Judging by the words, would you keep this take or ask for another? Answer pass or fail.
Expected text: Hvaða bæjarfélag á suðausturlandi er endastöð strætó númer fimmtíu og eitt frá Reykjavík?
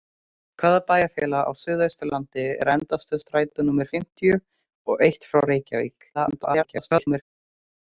fail